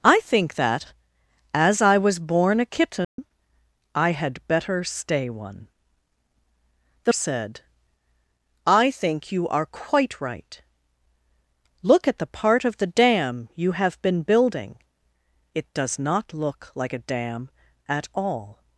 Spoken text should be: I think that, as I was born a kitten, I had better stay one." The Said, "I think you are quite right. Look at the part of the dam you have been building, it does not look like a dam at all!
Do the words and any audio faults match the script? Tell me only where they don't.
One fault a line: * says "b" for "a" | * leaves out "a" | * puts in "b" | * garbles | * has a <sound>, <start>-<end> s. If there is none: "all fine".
* has a dropout, 3.0-3.2 s